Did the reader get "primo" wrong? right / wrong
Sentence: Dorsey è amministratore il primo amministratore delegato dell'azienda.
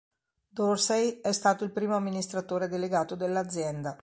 right